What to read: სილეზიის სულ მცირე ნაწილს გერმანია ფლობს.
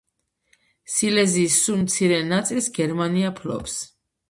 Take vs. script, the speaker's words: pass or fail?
pass